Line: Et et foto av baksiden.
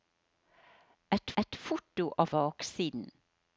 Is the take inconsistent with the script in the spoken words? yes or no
no